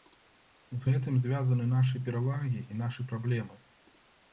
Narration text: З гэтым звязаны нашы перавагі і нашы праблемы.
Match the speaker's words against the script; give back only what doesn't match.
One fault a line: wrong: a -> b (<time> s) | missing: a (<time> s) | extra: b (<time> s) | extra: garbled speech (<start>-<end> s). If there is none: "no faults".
no faults